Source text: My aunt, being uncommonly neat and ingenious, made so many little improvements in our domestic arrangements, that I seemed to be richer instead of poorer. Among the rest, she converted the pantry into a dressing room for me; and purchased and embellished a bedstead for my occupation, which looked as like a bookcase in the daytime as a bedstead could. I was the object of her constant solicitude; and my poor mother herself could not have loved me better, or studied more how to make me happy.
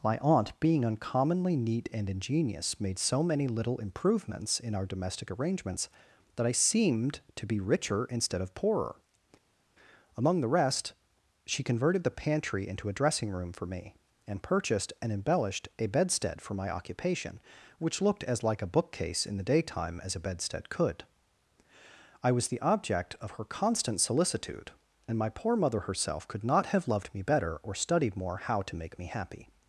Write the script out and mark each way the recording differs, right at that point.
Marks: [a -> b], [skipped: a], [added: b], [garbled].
My aunt, being uncommonly neat and ingenious, made so many little improvements in our domestic arrangements, that I seemed to be richer instead of poorer. Among the rest, she converted the pantry into a dressing room for me; and purchased and embellished a bedstead for my occupation, which looked as like a bookcase in the daytime as a bedstead could. I was the object of her constant solicitude; and my poor mother herself could not have loved me better, or studied more how to make me happy.